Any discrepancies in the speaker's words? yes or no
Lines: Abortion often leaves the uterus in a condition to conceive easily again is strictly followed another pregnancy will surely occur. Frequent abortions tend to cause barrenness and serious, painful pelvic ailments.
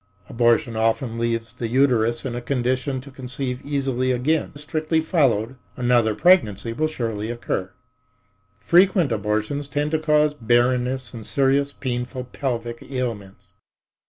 no